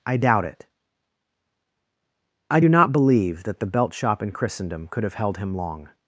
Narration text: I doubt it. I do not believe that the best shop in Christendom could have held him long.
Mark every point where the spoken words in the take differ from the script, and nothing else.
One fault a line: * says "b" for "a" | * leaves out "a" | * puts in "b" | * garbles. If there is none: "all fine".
* says "belt" for "best"